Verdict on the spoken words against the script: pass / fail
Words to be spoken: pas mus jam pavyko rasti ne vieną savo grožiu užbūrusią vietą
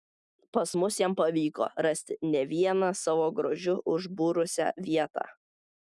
pass